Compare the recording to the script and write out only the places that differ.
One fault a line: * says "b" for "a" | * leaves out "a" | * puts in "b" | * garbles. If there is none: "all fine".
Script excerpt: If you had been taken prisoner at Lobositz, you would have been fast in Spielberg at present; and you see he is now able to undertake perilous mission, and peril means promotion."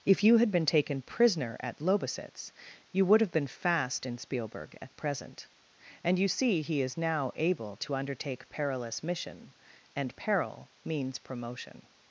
all fine